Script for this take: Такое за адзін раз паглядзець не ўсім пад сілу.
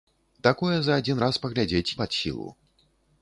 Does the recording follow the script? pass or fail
fail